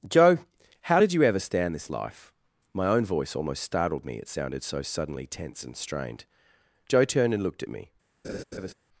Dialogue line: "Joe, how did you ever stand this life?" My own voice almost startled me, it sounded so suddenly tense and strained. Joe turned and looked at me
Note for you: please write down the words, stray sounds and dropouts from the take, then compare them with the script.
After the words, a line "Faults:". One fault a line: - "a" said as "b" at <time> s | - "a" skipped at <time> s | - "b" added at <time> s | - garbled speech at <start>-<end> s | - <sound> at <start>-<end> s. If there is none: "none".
"Joe, how did you ever stand this life?" My own voice almost startled me, it sounded so suddenly tense and strained. Joe turned and looked at me
Faults:
- laugh at 8.2-8.7 s